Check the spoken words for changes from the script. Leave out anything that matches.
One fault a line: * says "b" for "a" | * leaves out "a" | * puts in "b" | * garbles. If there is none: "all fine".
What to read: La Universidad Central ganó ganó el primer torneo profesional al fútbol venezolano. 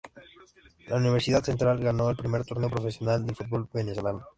* leaves out "ganó"
* says "del" for "al"